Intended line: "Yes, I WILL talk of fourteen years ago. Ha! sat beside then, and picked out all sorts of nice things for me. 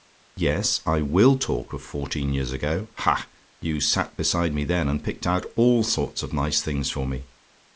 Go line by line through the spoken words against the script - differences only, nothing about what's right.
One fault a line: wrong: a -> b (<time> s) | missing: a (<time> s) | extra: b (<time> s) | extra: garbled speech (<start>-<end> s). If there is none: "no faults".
extra: you (3.6 s)
extra: me (4.5 s)